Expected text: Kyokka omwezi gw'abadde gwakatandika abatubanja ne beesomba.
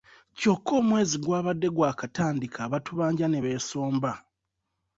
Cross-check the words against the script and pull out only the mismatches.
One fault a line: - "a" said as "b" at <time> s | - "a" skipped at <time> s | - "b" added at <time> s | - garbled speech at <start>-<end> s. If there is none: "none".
none